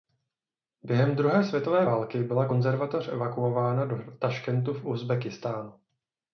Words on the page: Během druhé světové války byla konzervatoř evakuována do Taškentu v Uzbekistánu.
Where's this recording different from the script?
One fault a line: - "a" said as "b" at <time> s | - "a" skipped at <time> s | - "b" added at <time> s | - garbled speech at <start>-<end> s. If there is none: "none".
none